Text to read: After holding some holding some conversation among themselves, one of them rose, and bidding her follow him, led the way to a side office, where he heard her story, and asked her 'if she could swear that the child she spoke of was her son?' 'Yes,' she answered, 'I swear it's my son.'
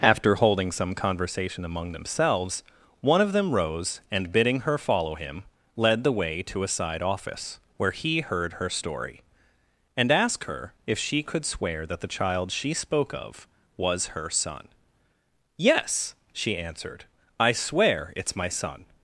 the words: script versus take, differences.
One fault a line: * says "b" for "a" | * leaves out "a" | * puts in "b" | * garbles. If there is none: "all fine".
* leaves out "holding some"